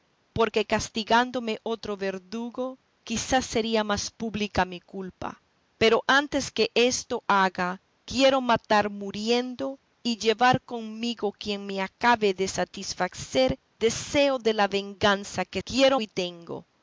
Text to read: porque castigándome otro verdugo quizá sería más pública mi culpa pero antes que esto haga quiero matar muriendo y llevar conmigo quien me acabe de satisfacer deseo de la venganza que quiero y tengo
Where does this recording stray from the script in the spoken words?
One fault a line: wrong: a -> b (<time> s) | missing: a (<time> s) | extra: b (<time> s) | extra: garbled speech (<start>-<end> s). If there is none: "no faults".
no faults